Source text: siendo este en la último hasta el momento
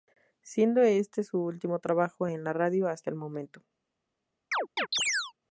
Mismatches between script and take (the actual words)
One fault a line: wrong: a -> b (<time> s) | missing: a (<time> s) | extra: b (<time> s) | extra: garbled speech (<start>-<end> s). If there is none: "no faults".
extra: su último trabajo (1.2 s)
wrong: último -> radio (2.5 s)